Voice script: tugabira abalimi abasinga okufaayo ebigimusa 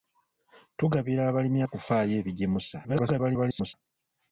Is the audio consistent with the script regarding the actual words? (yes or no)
no